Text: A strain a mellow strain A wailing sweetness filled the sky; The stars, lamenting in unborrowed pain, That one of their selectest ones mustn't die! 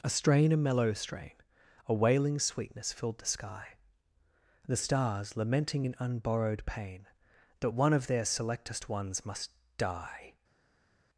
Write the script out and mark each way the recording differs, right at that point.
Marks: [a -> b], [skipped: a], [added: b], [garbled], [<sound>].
A strain a mellow strain A wailing sweetness filled the sky; The stars, lamenting in unborrowed pain, That one of their selectest ones [mustn't -> must] die!